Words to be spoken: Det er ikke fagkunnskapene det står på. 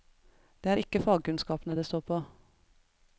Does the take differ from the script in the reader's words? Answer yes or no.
no